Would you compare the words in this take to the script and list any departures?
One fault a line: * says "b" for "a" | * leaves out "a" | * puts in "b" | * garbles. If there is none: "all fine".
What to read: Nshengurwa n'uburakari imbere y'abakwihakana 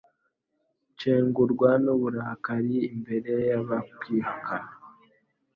all fine